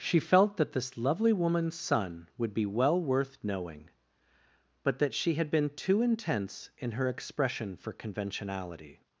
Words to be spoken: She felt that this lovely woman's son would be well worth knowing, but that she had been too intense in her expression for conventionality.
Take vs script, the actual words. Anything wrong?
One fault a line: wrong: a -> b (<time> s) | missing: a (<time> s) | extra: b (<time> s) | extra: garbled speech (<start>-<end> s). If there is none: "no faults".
no faults